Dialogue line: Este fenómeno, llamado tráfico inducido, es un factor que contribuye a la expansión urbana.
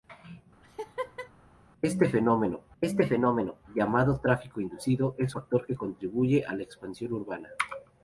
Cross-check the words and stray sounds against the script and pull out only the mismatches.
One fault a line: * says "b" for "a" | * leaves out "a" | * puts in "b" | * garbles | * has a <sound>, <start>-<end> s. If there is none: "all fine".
* has a laugh, 0.6-1.3 s
* puts in "este fenómeno"
* leaves out "un"